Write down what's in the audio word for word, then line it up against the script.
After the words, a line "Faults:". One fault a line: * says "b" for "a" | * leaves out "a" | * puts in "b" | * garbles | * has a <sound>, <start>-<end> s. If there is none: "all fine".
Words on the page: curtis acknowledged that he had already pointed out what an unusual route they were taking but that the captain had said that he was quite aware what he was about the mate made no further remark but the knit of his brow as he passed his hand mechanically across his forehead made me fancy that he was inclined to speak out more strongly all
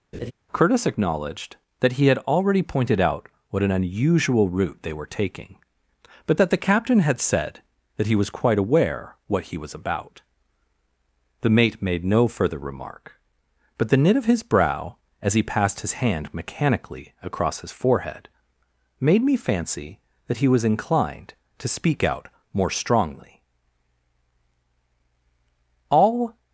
curtis acknowledged that he had already pointed out what an unusual route they were taking but that the captain had said that he was quite aware what he was about the mate made no further remark but the knit of his brow as he passed his hand mechanically across his forehead made me fancy that he was inclined to speak out more strongly all
Faults:
* has a laugh, 0.1-0.3 s